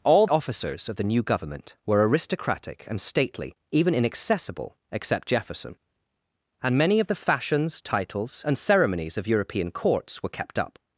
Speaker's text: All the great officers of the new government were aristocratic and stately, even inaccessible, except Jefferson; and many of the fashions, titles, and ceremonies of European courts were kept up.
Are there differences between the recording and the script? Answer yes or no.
yes